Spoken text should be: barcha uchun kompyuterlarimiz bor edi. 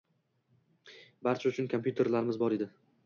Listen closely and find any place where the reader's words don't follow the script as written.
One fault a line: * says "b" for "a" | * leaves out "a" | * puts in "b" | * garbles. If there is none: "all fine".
all fine